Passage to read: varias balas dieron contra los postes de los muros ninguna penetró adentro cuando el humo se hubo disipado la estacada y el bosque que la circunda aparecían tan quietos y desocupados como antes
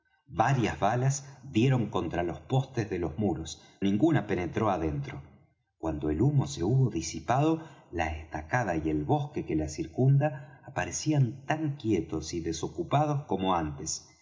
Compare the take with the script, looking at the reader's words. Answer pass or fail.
pass